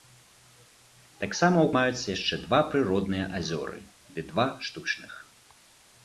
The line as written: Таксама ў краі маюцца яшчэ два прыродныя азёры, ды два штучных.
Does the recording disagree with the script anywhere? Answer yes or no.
yes